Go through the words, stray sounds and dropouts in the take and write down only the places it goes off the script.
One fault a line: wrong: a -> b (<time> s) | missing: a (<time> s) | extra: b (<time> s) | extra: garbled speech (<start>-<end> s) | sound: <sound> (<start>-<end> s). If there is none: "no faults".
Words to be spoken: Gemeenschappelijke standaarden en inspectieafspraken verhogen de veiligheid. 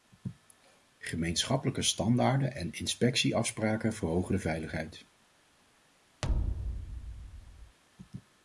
sound: thud (6.2-7.8 s)